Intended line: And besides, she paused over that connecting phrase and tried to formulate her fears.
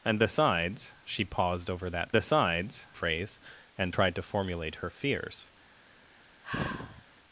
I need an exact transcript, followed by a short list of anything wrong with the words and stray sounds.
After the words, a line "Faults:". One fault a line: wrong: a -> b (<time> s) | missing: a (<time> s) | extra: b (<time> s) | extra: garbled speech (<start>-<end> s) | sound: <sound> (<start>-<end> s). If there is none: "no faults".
And besides, she paused over that besides phrase and tried to formulate her fears.
Faults:
wrong: connecting -> besides (2.1 s)
sound: sigh (6.4-7.0 s)